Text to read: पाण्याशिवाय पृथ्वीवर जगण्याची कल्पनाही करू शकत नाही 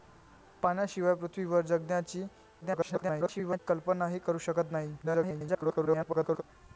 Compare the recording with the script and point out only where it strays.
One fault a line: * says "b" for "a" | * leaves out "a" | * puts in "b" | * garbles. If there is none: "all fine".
* garbles
* garbles